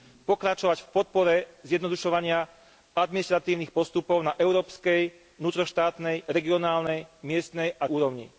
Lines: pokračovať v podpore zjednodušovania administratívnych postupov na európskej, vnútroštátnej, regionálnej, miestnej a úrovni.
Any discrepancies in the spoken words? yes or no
no